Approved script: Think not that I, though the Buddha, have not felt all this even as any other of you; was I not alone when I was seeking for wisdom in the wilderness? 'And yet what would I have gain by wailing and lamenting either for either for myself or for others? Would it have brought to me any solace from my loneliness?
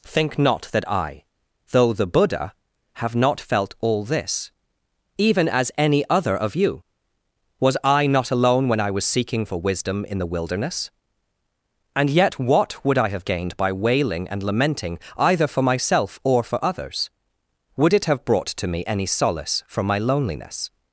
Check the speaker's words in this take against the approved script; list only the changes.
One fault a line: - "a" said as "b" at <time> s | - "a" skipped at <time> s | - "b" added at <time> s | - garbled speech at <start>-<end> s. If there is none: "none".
- "gain" said as "gained" at 13.2 s
- "either for" skipped at 15.6 s